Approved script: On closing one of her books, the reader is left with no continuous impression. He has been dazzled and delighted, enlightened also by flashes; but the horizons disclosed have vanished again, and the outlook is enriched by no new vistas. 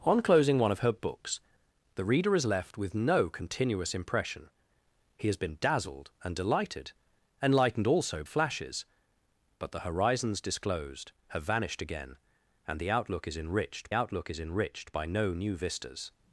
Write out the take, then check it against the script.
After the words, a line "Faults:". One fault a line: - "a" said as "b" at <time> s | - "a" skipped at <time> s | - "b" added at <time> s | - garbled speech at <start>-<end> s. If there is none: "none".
On closing one of her books, the reader is left with no continuous impression. He has been dazzled and delighted, enlightened also flashes; but the horizons disclosed have vanished again, and the outlook is enriched outlook is enriched by no new vistas.
Faults:
- "by" skipped at 8.2 s
- "outlook is enriched" added at 13.9 s